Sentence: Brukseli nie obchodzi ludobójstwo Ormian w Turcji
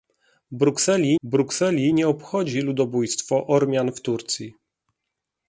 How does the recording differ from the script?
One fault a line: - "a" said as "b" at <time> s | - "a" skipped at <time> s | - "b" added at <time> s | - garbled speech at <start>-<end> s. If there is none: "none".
- "brukseli" added at 1.2 s